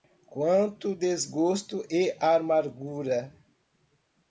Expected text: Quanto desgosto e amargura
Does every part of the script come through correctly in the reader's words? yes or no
yes